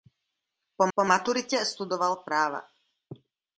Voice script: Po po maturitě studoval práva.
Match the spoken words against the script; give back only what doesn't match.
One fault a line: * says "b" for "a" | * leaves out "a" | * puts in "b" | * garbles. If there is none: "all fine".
all fine